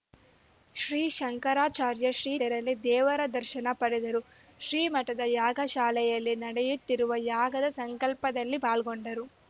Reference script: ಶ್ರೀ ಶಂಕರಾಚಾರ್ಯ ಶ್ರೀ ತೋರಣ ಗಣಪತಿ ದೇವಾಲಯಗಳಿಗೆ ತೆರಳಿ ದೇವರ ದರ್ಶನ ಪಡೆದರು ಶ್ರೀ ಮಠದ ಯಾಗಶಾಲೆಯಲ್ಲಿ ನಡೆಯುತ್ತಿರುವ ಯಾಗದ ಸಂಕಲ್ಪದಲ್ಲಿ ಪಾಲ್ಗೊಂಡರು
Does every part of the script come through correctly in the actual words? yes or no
no